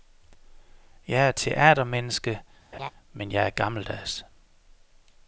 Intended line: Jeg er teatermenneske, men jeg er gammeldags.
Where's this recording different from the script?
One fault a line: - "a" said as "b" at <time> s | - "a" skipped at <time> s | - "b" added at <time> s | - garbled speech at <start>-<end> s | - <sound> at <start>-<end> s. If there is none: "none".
- laugh at 2.7-2.9 s